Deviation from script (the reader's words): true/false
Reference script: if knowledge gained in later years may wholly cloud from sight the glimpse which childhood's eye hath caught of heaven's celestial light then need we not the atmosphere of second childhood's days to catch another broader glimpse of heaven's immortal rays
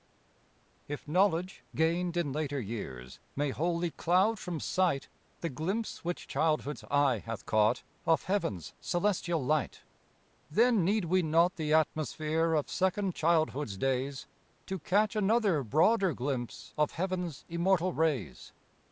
false